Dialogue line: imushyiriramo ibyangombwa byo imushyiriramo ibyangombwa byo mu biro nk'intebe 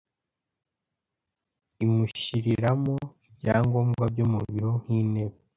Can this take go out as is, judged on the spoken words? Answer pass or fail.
fail